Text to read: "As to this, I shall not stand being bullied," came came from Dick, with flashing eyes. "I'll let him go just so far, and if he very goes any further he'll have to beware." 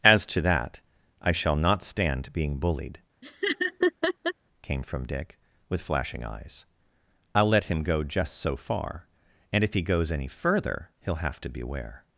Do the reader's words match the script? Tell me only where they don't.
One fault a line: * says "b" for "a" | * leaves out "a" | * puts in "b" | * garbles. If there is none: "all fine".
* says "that" for "this"
* leaves out "came"
* leaves out "very"